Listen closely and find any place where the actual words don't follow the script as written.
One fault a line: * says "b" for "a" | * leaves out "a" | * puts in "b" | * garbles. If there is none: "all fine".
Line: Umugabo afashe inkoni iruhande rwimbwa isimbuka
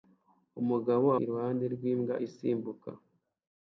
* leaves out "afashe inkoni"